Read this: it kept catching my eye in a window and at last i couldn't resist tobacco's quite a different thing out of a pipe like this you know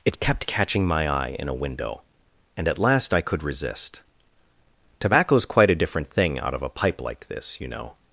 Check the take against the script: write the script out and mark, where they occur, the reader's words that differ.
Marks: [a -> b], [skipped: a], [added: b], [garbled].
it kept catching my eye in a window and at last i [couldn't -> could] resist tobacco's quite a different thing out of a pipe like this you know